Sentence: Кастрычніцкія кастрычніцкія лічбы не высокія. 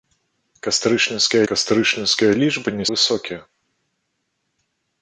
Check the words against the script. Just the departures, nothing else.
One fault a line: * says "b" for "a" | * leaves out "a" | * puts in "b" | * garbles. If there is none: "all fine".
all fine